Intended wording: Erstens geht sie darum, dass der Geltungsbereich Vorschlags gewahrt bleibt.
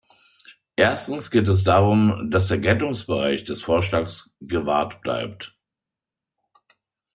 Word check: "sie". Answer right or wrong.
wrong